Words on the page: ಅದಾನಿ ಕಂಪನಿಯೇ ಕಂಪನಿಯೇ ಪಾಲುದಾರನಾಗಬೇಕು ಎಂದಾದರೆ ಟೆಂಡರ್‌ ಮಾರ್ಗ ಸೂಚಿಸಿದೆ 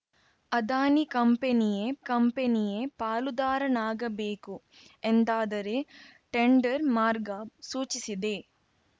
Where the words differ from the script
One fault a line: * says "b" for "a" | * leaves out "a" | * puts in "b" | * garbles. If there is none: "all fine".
all fine